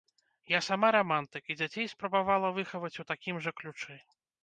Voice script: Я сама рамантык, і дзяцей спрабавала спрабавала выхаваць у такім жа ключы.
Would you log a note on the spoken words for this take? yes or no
yes